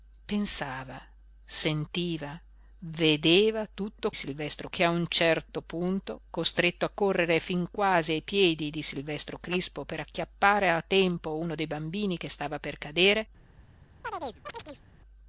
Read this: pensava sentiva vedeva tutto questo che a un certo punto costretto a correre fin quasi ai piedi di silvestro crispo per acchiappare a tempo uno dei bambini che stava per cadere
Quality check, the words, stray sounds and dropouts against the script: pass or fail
fail